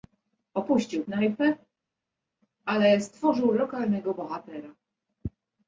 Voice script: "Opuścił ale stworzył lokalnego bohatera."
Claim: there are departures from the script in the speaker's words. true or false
true